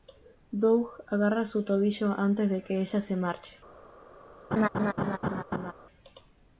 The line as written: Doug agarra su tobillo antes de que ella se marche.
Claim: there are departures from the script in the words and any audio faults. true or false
true